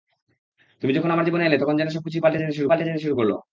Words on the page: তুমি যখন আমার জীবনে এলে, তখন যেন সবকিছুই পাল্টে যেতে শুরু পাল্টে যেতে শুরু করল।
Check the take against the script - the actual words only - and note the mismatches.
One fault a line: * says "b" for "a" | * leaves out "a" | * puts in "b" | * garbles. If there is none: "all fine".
all fine